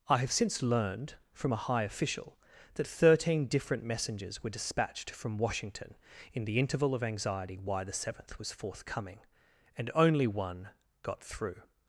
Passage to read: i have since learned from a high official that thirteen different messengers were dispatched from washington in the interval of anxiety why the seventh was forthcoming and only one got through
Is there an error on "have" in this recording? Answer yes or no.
no